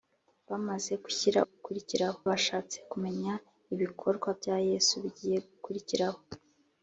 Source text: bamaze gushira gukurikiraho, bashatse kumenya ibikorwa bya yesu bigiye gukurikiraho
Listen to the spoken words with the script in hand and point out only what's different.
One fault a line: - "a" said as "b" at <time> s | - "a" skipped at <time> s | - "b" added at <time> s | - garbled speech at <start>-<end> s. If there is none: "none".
none